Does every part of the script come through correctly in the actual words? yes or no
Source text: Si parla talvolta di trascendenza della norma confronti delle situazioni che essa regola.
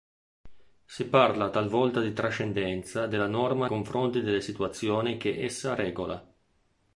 yes